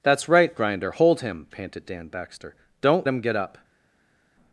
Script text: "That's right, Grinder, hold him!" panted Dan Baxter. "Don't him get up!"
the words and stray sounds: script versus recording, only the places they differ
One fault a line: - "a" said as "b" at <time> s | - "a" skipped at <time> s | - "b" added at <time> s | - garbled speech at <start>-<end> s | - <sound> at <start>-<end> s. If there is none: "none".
none